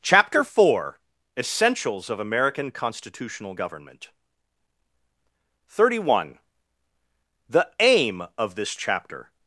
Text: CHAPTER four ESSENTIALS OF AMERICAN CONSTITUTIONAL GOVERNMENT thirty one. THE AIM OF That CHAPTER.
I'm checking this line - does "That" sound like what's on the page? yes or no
no